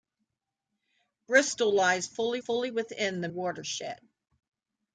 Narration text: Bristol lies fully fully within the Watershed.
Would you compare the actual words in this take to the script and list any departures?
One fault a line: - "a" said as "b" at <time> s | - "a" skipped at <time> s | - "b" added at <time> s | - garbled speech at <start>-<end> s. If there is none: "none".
none